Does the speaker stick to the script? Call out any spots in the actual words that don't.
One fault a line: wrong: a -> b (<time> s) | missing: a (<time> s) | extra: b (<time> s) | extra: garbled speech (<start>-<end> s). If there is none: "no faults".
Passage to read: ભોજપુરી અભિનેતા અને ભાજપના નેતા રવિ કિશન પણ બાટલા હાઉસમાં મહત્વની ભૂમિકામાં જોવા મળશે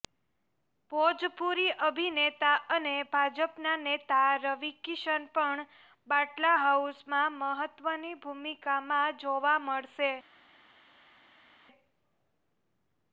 no faults